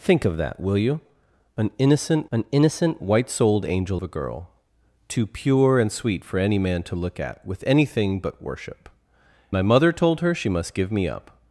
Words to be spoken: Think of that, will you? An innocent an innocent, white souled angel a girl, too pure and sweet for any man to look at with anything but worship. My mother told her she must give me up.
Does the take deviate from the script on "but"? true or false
false